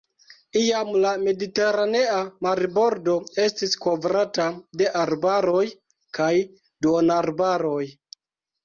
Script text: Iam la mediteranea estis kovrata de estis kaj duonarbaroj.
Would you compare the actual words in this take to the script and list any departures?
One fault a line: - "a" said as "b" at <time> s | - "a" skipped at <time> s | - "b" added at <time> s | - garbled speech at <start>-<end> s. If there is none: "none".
- "marbordo" added at 2.5 s
- "estis" said as "arbaroj" at 5.1 s